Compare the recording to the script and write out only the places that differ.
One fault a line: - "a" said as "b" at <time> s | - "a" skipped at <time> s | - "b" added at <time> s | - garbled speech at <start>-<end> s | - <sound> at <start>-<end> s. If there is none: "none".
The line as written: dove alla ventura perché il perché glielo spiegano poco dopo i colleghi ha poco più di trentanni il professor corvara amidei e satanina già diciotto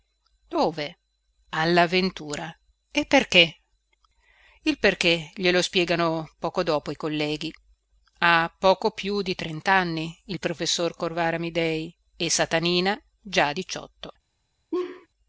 - "e" added at 2.9 s
- laugh at 14.7-15.1 s